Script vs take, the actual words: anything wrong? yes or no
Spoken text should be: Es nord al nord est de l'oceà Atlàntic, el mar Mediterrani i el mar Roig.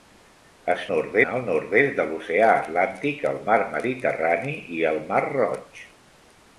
no